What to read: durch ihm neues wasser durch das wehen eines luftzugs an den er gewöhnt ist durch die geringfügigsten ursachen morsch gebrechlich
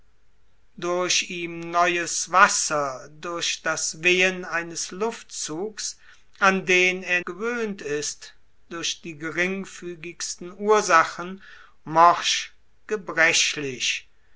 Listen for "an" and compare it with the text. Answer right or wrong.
right